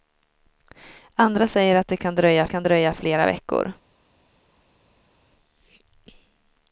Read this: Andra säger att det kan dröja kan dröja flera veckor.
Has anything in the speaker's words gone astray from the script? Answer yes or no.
no